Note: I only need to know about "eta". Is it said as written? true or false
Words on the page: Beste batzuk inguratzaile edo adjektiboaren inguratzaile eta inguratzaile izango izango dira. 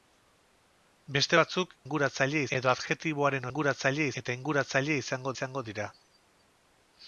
true